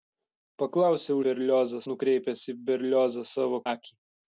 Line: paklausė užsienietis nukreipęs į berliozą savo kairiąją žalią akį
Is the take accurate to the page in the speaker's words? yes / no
no